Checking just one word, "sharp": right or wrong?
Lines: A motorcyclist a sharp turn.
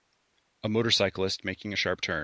right